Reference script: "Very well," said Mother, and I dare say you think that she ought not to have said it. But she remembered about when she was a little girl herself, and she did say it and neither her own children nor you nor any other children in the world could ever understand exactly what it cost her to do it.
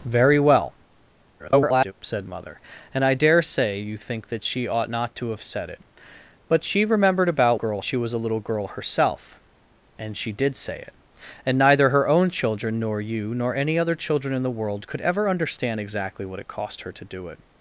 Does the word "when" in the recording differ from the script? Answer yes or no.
yes